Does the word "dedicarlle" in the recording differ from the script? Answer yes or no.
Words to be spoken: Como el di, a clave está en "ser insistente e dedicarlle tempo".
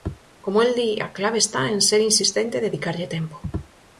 no